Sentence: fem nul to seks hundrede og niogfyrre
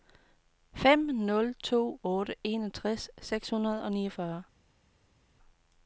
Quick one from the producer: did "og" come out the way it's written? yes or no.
yes